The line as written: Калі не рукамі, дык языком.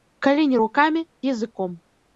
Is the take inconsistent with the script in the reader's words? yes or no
yes